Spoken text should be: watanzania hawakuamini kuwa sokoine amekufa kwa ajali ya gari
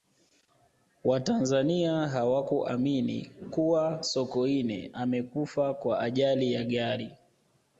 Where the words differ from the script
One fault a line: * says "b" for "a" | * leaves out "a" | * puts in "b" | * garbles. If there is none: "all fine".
all fine